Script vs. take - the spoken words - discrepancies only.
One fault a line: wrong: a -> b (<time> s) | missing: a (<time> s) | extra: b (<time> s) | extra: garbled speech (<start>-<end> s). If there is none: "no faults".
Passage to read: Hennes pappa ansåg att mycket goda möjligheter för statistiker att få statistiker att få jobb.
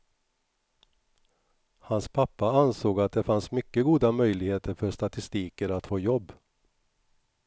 wrong: Hennes -> Hans (1.8 s)
extra: det fanns (3.1 s)
missing: statistiker att få (6.0 s)